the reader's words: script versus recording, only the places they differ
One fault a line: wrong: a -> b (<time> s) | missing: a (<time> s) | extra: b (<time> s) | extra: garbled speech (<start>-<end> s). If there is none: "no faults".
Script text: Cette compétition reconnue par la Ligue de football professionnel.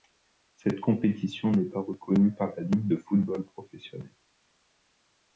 extra: n'est pas (1.5 s)